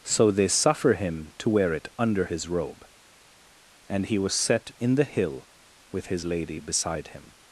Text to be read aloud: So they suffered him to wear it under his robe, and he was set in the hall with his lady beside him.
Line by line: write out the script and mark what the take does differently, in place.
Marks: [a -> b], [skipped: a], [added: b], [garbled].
So they [suffered -> suffer] him to wear it under his robe, and he was set in the [hall -> hill] with his lady beside him.